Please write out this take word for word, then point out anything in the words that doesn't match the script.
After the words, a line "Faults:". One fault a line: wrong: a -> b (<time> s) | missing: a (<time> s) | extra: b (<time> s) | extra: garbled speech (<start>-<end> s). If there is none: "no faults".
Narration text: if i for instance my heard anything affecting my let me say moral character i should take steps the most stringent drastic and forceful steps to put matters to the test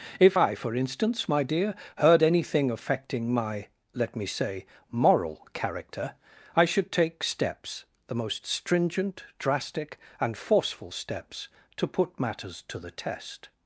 if i for instance my dear heard anything affecting my let me say moral character i should take steps the most stringent drastic and forceful steps to put matters to the test
Faults:
extra: dear (1.4 s)